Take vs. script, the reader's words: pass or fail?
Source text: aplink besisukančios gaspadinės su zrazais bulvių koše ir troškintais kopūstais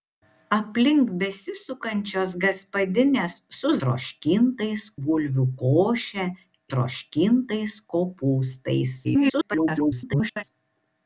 fail